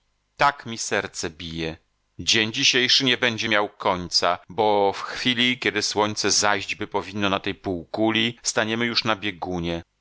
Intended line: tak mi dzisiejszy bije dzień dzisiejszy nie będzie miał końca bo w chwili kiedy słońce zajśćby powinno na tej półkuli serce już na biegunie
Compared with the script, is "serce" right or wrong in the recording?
wrong